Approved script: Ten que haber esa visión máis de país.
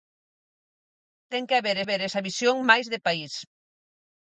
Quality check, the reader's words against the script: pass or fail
fail